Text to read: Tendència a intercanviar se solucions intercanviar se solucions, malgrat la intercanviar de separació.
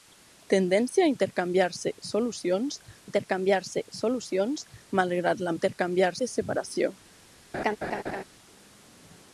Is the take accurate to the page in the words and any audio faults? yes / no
no